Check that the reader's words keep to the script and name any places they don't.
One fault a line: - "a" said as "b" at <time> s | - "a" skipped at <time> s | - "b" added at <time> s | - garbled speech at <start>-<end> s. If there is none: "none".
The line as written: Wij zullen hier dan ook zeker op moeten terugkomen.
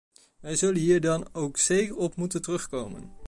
none